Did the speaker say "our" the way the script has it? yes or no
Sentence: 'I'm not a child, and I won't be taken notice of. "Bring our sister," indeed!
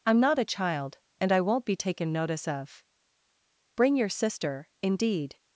no